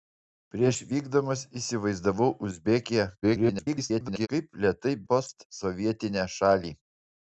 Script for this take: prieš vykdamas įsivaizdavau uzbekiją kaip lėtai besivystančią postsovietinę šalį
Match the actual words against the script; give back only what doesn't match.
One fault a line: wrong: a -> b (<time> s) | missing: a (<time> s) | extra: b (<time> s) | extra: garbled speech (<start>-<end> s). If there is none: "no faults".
extra: garbled speech (3.2-4.3 s)
missing: besivystančią (5.0 s)